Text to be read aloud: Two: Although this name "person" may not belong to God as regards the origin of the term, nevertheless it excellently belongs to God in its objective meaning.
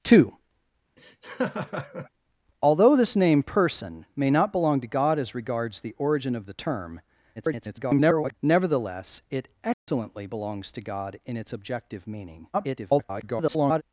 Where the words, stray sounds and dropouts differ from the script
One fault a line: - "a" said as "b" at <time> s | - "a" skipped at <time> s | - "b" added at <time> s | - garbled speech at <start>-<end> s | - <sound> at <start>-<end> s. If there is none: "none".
- laugh at 1.0-2.1 s
- garbled speech at 7.4-8.3 s
- dropout at 9.7-9.9 s
- garbled speech at 12.5-13.8 s